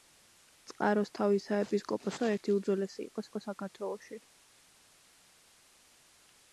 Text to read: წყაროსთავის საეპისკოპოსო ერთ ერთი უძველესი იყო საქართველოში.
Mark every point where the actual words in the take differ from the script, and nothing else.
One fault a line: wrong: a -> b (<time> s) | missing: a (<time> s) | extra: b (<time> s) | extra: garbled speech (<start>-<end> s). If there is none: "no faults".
missing: ერთ (2.3 s)
extra: იყო (3.3 s)